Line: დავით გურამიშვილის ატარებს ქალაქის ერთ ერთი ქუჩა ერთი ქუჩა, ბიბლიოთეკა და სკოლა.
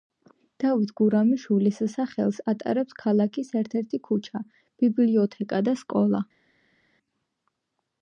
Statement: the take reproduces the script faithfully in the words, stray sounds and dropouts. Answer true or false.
false